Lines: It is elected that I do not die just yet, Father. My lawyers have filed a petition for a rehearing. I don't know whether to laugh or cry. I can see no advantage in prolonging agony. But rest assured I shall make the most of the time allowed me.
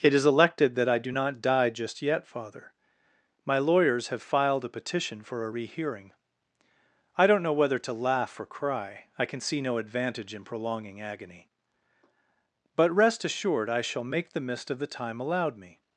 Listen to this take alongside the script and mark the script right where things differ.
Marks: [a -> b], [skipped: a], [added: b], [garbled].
It is elected that I do not die just yet, Father. My lawyers have filed a petition for a rehearing. I don't know whether to laugh or cry. I can see no advantage in prolonging agony. But rest assured I shall make the [most -> mist] of the time allowed me.